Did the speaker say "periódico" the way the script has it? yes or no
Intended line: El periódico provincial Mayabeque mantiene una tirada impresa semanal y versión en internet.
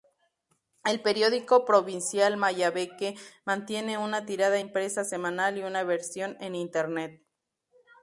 yes